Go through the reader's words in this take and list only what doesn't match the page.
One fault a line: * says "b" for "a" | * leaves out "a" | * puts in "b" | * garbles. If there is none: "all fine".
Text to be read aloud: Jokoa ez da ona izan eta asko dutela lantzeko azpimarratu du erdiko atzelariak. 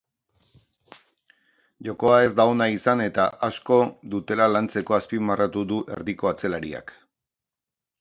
all fine